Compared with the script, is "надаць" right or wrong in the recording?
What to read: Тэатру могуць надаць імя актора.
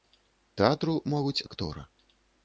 wrong